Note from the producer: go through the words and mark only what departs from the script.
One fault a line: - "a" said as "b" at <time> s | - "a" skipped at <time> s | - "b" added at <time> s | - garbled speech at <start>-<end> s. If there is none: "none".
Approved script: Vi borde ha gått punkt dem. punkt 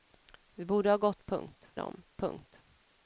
none